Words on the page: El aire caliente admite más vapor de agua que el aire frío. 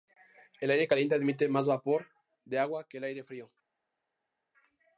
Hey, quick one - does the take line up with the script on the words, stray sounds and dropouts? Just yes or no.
yes